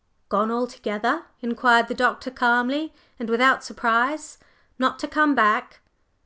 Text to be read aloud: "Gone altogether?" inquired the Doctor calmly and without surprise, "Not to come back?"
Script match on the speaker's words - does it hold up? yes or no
yes